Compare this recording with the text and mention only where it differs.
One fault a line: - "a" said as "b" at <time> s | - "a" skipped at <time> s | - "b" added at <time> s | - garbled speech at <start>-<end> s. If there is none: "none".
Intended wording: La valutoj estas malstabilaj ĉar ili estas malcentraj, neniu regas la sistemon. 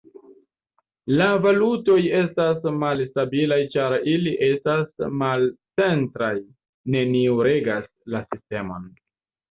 none